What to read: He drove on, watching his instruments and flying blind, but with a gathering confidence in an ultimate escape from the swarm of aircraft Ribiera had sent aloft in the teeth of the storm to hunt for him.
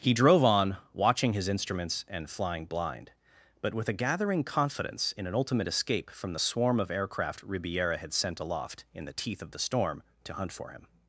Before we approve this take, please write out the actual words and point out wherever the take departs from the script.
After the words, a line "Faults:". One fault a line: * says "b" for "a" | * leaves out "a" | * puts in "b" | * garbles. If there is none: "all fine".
He drove on, watching his instruments and flying blind, but with a gathering confidence in an ultimate escape from the swarm of aircraft Ribiera had sent aloft in the teeth of the storm to hunt for him.
Faults:
all fine